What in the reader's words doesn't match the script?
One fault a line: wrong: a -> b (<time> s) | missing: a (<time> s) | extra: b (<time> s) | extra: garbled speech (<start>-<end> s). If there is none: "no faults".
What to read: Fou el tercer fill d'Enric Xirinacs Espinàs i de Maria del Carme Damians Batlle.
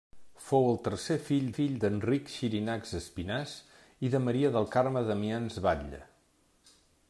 extra: fill (1.5 s)